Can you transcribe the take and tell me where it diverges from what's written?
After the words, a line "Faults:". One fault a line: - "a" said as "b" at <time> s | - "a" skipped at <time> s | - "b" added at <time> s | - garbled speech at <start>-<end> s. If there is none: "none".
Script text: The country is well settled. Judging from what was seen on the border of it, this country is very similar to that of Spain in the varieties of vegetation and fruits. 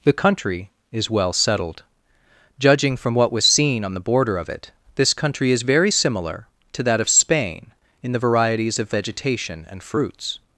The country is well settled. Judging from what was seen on the border of it, this country is very similar to that of Spain in the varieties of vegetation and fruits.
Faults:
none